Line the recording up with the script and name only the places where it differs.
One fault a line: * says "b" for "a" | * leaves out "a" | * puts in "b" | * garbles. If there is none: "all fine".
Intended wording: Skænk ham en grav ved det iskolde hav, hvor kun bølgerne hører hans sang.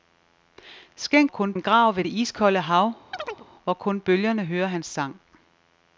* says "kun" for "ham"